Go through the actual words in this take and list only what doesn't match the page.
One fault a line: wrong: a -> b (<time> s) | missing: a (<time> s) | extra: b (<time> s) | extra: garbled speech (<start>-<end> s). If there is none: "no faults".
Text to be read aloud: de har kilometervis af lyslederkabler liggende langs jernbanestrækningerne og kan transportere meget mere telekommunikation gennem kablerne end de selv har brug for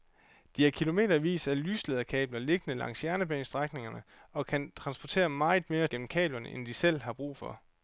missing: telekommunikation (5.9 s)